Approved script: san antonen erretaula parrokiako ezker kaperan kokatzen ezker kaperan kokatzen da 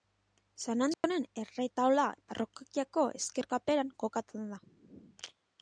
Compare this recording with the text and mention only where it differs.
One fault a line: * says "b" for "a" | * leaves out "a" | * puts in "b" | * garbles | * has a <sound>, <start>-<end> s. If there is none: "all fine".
* has a dropout, 0.9-1.0 s
* leaves out "ezker kaperan kokatzen"